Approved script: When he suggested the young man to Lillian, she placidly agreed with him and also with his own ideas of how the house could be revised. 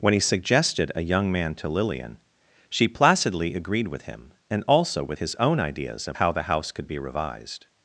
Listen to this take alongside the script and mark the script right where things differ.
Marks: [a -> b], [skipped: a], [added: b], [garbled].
When he suggested [the -> a] young man to Lillian, she placidly agreed with him and also with his own ideas of how the house could be revised.